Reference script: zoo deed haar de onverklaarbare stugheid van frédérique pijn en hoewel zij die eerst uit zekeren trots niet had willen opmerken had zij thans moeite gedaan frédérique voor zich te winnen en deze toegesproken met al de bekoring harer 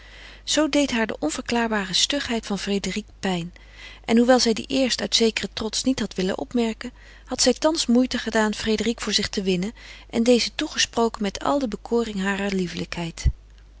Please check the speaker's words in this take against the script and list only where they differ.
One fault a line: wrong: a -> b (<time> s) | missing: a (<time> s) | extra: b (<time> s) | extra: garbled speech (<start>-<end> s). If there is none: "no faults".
no faults